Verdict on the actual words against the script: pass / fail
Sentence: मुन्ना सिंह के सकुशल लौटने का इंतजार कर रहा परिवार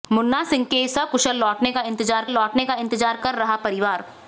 fail